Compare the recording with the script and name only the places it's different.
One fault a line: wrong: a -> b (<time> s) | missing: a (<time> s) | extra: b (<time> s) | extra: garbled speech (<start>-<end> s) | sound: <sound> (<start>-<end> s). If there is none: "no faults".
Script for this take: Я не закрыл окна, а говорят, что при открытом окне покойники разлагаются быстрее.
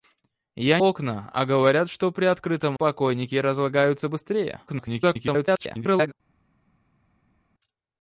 missing: не закрыл (0.8 s)
missing: окне (2.8 s)
extra: garbled speech (4.7-6.1 s)